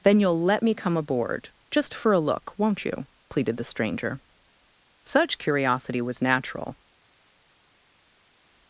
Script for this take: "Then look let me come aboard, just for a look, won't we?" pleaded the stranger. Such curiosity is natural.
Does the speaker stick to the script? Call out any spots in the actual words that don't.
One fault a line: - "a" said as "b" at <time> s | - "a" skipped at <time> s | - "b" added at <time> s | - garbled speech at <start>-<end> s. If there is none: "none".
- "look" said as "you'll" at 0.2 s
- "we" said as "you" at 2.9 s
- "is" said as "was" at 6.0 s